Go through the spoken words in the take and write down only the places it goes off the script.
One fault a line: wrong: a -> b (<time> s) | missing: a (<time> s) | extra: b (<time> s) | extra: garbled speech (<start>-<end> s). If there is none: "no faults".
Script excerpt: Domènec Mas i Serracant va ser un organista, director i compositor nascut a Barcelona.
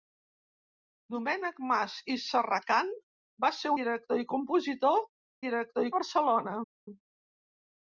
missing: un organista (3.7 s)
wrong: nascut -> director (5.5 s)